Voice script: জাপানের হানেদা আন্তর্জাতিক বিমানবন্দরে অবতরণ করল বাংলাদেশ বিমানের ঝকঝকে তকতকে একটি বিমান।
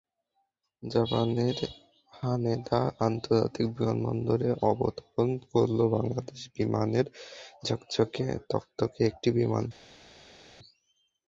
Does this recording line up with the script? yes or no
yes